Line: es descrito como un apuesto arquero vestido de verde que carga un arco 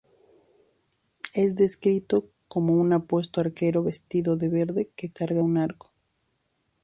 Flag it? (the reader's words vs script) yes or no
no